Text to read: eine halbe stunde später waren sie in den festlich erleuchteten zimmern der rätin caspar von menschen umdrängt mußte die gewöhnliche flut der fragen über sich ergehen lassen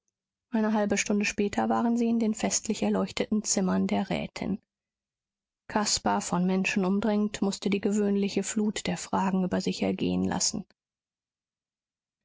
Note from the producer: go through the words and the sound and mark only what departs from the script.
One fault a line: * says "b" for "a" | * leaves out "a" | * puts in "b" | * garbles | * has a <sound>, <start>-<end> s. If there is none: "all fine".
all fine